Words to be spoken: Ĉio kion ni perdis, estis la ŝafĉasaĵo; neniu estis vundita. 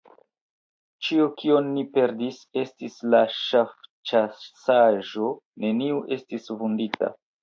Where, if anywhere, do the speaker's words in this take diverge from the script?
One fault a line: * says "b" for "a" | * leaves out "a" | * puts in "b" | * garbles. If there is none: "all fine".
all fine